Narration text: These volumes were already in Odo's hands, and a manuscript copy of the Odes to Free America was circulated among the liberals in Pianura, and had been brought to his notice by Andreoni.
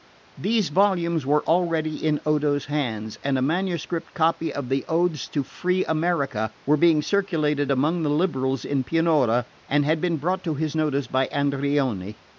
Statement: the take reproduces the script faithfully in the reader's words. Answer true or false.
false